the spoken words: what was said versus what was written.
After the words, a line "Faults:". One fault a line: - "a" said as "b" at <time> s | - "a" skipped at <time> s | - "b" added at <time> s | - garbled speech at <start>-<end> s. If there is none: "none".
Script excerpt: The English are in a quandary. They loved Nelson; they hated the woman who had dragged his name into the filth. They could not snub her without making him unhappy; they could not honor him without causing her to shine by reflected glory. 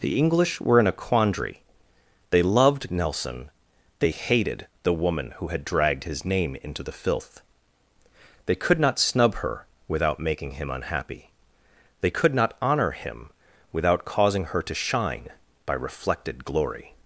The English were in a quandary. They loved Nelson; they hated the woman who had dragged his name into the filth. They could not snub her without making him unhappy; they could not honor him without causing her to shine by reflected glory.
Faults:
- "are" said as "were" at 0.6 s